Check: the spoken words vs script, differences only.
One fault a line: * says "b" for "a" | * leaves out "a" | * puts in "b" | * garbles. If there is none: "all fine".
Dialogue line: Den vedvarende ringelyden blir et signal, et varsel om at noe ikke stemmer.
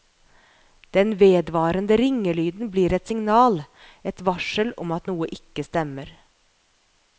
all fine